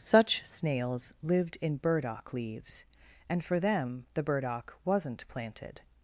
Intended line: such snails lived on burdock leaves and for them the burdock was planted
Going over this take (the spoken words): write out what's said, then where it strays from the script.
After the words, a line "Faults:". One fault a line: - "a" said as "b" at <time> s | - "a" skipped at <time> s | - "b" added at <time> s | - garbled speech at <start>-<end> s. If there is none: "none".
such snails lived in burdock leaves and for them the burdock wasn't planted
Faults:
- "on" said as "in" at 1.6 s
- "was" said as "wasn't" at 4.9 s